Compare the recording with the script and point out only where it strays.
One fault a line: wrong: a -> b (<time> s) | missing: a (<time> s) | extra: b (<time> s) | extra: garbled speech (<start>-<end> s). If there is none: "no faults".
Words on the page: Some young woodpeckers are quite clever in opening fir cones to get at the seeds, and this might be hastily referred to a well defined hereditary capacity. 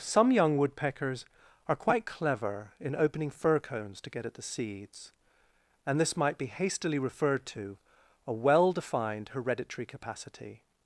no faults